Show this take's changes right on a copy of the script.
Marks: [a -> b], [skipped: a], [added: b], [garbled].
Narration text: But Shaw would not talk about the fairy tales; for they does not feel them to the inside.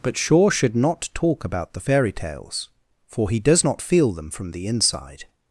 But Shaw [would -> should] not talk about the fairy tales; for [they -> he] does not feel them [to -> from] the inside.